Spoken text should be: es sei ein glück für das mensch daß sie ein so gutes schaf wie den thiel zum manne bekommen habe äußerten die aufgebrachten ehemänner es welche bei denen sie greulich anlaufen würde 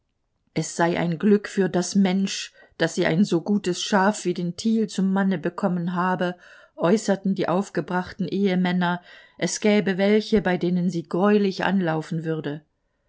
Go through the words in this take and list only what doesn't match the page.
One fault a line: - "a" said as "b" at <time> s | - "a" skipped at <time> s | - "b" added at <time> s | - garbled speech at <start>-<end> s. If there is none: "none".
- "gäbe" added at 9.6 s